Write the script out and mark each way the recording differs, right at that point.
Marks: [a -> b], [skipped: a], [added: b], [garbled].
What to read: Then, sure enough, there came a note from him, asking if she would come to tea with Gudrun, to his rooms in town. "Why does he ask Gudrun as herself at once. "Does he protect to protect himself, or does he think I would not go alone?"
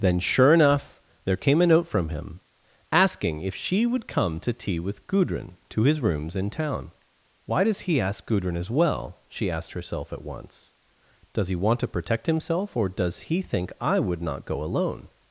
Then, sure enough, there came a note from him, asking if she would come to tea with Gudrun, to his rooms in town. "Why does he ask Gudrun as [added: well she asked] herself at once. "Does he [protect -> want] to protect himself, or does he think I would not go alone?"